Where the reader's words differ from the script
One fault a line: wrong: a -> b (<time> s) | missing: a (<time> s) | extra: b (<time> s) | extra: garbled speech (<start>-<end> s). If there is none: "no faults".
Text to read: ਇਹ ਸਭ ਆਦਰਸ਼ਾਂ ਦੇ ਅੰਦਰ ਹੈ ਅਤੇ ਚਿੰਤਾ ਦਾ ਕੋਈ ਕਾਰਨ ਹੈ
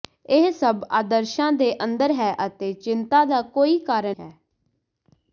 no faults